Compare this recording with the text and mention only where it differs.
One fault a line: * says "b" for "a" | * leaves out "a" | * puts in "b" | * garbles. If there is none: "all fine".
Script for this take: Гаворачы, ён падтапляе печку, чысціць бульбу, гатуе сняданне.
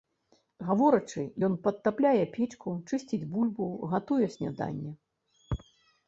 all fine